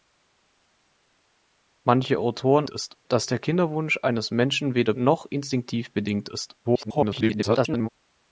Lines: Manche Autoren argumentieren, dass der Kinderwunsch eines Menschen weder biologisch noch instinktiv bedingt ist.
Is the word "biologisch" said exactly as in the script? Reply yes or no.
no